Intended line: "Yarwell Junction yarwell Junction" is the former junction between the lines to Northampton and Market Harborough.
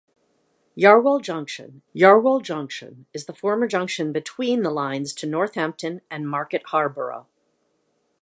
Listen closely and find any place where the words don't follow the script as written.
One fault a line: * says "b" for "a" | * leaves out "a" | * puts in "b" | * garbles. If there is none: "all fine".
all fine